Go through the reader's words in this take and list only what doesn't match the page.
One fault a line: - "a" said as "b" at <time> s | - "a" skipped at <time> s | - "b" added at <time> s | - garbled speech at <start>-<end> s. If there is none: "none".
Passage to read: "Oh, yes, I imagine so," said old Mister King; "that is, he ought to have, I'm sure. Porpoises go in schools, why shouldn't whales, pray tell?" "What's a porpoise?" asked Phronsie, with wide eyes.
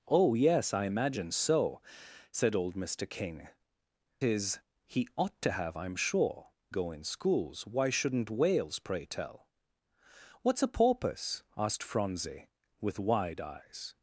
- "that" skipped at 3.5 s
- "Porpoises" skipped at 6.5 s